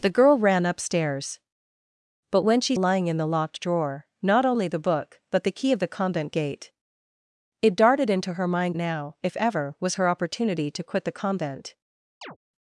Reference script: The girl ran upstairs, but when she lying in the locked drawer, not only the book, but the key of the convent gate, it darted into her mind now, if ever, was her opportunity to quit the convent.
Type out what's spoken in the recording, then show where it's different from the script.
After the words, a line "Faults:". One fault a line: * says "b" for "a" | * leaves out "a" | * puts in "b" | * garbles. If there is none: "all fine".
The girl ran upstairs, but when she lying in the locked drawer, not only the book, but the key of the convent gate, it darted into her mind now, if ever, was her opportunity to quit the convent.
Faults:
all fine